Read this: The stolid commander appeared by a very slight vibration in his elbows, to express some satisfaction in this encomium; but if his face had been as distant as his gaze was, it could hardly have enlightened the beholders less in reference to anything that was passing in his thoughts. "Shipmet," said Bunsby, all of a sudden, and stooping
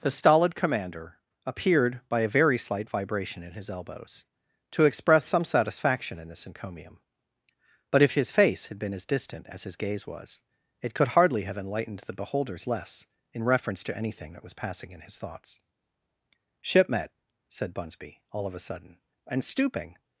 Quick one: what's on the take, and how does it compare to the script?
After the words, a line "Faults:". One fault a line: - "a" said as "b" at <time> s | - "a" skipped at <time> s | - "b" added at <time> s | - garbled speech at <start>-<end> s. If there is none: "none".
The stolid commander appeared by a very slight vibration in his elbows, to express some satisfaction in this encomium; but if his face had been as distant as his gaze was, it could hardly have enlightened the beholders less in reference to anything that was passing in his thoughts. "Shipmet," said Bunsby, all of a sudden, and stooping
Faults:
none